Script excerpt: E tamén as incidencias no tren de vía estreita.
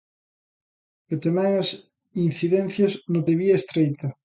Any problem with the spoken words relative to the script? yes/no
yes